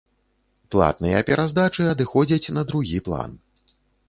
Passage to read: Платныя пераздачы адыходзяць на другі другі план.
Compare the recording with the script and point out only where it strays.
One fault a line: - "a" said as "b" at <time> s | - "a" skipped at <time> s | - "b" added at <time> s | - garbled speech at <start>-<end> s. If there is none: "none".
- "другі" skipped at 3.0 s